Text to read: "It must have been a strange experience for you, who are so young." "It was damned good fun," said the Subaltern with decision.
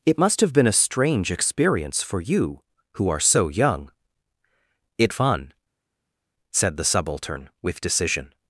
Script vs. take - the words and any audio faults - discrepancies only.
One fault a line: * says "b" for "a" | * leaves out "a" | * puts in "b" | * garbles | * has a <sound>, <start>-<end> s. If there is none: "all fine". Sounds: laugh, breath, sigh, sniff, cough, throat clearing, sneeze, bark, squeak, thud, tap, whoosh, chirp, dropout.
* leaves out "was damned good"